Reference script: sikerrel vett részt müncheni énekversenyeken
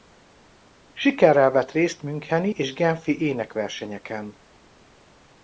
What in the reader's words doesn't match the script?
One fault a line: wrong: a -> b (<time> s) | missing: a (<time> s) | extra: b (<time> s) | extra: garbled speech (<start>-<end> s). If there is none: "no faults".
extra: és genfi (2.5 s)